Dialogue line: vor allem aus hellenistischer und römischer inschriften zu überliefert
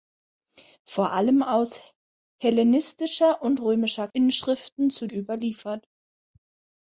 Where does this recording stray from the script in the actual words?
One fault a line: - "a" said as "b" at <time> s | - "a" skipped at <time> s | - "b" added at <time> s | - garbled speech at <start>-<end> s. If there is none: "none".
none